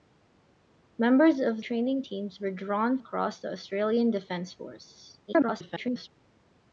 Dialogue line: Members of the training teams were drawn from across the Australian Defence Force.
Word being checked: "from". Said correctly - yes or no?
no